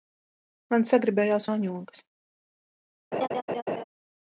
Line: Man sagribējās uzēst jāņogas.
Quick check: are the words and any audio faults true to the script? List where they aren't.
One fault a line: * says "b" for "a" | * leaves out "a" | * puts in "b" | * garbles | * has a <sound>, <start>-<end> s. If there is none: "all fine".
* leaves out "uzēst"
* has a laugh, 3.1-3.8 s